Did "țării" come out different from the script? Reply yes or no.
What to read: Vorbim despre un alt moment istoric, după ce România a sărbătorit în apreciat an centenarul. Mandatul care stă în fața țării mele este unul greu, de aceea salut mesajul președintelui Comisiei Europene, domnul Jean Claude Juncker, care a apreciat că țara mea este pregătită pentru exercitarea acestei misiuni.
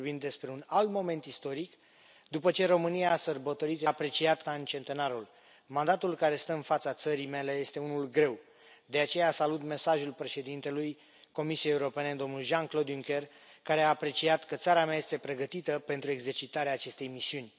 no